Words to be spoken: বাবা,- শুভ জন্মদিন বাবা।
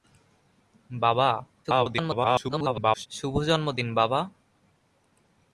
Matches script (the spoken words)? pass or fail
fail